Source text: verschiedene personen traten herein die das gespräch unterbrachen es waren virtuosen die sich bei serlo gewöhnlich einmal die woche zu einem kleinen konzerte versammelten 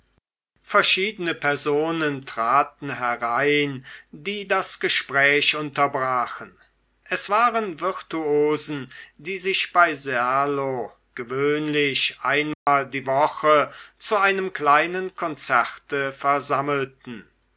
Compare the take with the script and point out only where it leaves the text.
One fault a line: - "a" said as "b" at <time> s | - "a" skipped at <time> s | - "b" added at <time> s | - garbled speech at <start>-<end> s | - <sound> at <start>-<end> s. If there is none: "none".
- dropout at 12.5-12.7 s